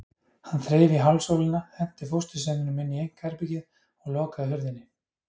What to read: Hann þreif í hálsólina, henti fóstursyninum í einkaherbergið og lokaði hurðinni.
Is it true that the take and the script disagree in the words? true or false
true